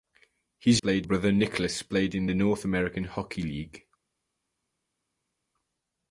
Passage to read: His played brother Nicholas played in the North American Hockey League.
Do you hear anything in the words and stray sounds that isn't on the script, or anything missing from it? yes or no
no